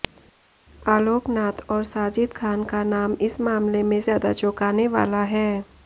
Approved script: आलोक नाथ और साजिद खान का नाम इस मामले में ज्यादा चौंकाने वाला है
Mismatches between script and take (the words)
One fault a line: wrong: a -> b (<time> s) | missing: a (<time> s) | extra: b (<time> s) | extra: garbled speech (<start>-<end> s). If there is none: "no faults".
no faults